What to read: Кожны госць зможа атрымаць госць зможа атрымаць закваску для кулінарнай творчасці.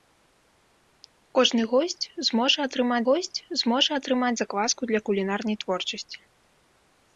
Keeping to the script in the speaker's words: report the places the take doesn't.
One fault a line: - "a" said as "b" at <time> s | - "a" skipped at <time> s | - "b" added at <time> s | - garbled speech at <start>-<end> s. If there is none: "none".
none